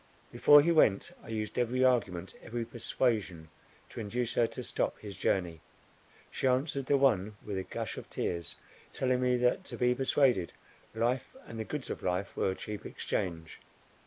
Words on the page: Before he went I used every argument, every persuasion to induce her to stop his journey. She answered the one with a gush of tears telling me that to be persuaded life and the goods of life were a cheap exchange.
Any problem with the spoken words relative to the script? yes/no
no